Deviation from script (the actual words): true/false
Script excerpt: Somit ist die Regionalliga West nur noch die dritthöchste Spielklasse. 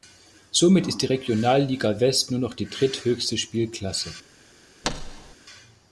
false